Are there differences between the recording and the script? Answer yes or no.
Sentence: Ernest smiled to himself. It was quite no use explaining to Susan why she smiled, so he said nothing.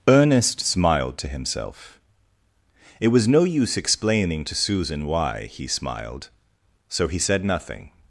yes